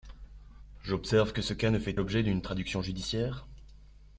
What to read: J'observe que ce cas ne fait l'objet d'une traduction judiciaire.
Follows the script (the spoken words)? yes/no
yes